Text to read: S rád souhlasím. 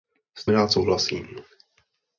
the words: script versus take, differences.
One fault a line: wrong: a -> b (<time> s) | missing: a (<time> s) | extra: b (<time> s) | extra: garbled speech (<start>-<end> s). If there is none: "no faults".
no faults